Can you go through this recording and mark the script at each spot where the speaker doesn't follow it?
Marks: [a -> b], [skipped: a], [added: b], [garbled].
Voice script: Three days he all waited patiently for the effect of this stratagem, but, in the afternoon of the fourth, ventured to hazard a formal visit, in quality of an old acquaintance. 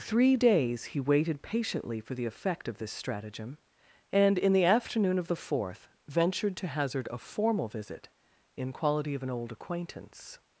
Three days he [skipped: all] waited patiently for the effect of this stratagem, [but, -> and] in the afternoon of the fourth, ventured to hazard a formal visit, in quality of an old acquaintance.